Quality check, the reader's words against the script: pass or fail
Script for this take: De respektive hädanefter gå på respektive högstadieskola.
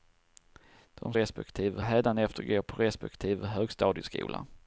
pass